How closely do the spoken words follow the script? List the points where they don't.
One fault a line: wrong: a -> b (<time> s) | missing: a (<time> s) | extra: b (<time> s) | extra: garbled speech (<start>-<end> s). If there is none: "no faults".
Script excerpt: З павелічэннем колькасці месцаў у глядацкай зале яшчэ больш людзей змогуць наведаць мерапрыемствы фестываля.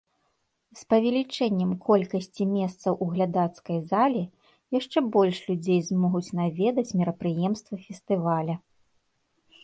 no faults